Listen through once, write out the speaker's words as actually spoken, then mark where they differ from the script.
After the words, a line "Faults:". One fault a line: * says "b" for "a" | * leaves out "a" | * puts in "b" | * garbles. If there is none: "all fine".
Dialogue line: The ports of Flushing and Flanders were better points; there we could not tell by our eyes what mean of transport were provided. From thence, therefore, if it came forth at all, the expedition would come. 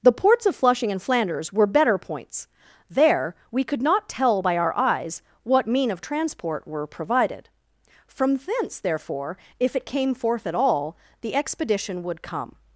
The ports of Flushing and Flanders were better points; there we could not tell by our eyes what mean of transport were provided. From thence, therefore, if it came forth at all, the expedition would come.
Faults:
all fine